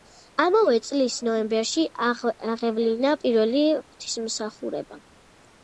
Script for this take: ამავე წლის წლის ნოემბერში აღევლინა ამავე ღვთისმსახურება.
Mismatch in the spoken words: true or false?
true